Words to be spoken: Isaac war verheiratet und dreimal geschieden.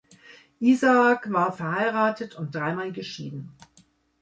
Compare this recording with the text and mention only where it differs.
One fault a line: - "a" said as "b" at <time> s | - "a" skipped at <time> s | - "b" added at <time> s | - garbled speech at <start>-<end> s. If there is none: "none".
none